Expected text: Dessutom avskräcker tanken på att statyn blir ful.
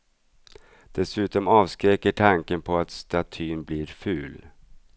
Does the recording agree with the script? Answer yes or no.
yes